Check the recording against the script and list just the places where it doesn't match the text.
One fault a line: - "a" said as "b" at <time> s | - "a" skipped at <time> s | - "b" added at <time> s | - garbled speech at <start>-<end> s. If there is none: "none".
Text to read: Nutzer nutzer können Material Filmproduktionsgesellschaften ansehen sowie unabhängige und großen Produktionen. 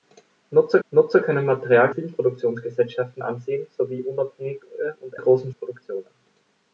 none